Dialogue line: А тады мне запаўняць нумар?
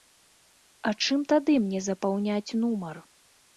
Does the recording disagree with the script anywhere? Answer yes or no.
yes